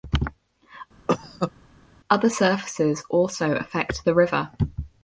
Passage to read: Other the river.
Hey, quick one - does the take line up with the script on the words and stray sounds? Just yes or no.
no